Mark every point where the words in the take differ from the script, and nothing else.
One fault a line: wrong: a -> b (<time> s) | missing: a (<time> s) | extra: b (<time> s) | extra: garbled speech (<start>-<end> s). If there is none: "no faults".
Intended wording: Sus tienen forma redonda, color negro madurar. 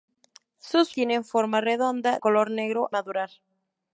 no faults